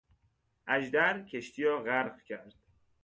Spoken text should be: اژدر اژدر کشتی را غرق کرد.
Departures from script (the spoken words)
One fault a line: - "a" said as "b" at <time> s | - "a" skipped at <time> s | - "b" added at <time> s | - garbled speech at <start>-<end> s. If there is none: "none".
- "اژدر" skipped at 1.2 s